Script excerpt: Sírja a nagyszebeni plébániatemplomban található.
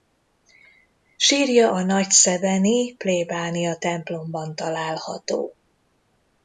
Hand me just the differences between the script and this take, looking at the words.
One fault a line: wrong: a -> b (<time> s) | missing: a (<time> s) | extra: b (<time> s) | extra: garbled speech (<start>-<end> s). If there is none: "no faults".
no faults